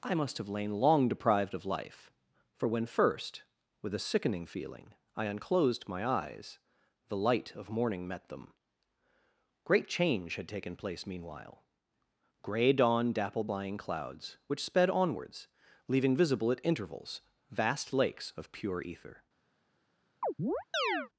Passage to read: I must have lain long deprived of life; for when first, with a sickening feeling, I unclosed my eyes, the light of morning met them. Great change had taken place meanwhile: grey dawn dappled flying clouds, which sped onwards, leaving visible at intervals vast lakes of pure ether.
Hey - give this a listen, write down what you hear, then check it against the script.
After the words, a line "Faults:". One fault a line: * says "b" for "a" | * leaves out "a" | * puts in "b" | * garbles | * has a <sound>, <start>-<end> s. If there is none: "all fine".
I must have lain long deprived of life; for when first, with a sickening feeling, I unclosed my eyes, the light of morning met them. Great change had taken place meanwhile: grey dawn dappled flying clouds, which sped onwards, leaving visible at intervals vast lakes of pure ether.
Faults:
* has a chirp, 20.2-21.1 s